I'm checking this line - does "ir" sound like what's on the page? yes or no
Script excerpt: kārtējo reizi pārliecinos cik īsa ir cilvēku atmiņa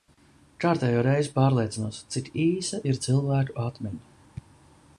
yes